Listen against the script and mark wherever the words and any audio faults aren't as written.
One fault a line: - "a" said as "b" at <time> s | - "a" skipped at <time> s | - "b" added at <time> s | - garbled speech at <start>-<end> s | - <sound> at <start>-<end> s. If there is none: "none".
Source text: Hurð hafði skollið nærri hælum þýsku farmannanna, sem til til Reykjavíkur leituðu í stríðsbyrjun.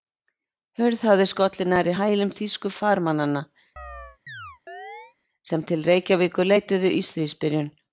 - chirp at 3.8-5.2 s
- "til" skipped at 5.9 s